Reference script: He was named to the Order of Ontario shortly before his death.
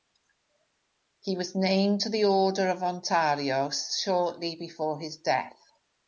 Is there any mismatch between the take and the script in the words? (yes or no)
no